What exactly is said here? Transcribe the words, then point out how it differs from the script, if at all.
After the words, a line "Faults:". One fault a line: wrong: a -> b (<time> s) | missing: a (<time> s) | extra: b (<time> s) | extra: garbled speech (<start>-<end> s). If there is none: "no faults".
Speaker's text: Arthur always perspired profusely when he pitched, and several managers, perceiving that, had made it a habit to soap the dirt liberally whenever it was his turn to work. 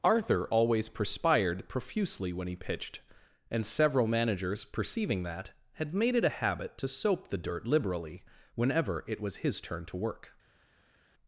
Arthur always perspired profusely when he pitched, and several managers, perceiving that, had made it a habit to soap the dirt liberally whenever it was his turn to work.
Faults:
no faults